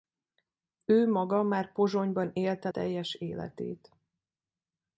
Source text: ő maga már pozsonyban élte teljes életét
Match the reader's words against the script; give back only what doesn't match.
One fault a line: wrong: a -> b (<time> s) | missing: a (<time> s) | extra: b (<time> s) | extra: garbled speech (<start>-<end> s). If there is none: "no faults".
no faults